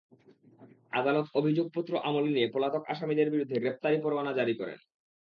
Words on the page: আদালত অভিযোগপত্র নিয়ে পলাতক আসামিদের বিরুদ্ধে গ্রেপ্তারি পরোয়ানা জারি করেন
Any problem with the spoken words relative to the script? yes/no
yes